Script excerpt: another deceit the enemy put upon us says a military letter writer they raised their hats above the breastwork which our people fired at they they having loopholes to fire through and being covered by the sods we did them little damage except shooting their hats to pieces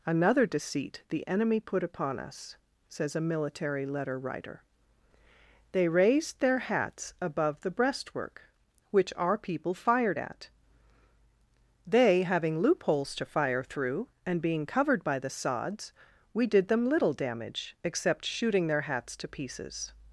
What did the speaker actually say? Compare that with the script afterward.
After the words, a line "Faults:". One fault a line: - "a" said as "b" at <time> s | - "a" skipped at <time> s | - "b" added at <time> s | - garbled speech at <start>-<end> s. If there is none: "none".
another deceit the enemy put upon us says a military letter writer they raised their hats above the breastwork which our people fired at they having loopholes to fire through and being covered by the sods we did them little damage except shooting their hats to pieces
Faults:
- "they" skipped at 12.2 s